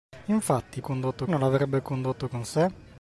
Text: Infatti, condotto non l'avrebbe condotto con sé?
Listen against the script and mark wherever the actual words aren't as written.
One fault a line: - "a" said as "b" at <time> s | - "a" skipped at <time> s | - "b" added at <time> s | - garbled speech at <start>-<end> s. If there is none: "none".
none